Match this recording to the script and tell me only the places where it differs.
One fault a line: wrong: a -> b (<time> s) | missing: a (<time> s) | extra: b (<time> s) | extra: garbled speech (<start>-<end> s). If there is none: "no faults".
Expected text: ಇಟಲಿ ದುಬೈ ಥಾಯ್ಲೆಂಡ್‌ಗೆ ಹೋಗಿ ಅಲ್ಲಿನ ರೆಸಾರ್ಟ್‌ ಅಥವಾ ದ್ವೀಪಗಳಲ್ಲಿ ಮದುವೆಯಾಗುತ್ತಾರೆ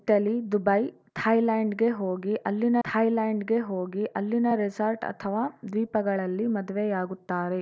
extra: ಥಾಯ್ಲೆಂಡ್‌ಗೆ ಹೋಗಿ ಅಲ್ಲಿನ (2.8 s)